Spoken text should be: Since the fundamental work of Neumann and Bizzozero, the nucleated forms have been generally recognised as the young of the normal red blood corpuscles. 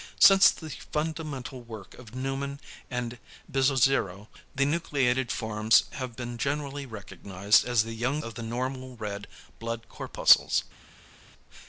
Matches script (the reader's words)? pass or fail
pass